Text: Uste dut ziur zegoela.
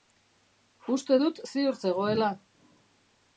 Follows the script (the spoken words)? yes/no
yes